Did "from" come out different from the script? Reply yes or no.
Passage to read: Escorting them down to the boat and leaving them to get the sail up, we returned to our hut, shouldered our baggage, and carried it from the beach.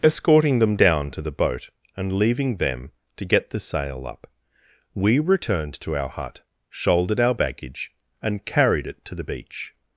yes